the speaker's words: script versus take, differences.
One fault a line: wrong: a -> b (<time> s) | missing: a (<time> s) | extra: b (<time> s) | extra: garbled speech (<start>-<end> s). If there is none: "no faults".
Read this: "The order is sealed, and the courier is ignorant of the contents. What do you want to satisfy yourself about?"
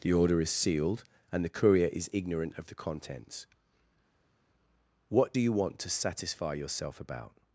no faults